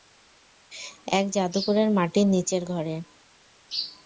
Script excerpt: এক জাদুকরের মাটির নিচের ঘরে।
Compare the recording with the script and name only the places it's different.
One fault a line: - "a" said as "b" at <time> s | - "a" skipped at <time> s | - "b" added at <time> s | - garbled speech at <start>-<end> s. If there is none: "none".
none